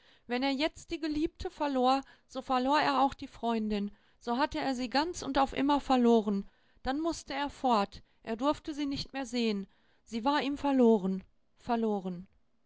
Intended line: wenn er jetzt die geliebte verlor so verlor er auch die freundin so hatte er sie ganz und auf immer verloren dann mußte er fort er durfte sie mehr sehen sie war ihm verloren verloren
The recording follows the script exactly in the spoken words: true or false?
false